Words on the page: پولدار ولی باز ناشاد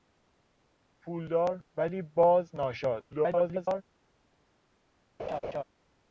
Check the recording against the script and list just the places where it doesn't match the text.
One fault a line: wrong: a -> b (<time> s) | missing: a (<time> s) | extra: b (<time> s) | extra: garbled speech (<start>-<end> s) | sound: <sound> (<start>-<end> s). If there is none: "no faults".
extra: garbled speech (3.1-3.8 s)
sound: laugh (5.2-5.6 s)